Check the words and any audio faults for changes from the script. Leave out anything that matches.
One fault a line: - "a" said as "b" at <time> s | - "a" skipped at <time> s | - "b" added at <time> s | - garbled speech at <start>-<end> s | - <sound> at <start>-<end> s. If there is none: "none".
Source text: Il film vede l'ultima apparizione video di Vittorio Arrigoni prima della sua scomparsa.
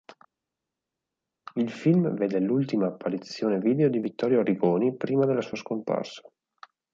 none